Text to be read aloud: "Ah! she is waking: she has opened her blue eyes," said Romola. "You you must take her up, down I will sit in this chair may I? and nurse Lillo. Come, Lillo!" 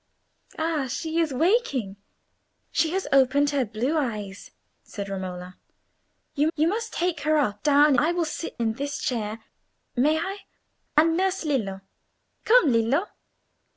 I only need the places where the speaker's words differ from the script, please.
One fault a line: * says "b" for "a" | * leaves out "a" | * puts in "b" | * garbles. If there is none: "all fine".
all fine